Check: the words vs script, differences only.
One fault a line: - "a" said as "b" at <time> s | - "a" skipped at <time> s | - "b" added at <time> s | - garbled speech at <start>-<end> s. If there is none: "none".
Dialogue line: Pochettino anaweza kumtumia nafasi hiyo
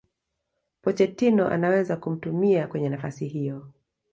- "kwenye" added at 2.7 s